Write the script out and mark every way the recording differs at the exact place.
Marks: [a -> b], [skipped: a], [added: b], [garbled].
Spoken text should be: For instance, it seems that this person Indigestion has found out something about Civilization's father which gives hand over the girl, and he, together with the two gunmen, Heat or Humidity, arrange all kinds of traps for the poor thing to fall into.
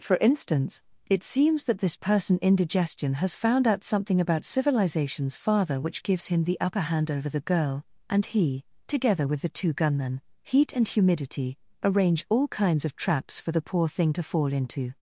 For instance, it seems that this person Indigestion has found out something about Civilization's father which gives [added: him the upper] hand over the girl, and he, together with the two gunmen, Heat [or -> and] Humidity, arrange all kinds of traps for the poor thing to fall into.